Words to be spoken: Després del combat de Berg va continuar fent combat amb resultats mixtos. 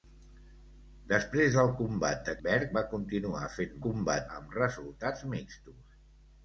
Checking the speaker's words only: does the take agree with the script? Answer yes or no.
yes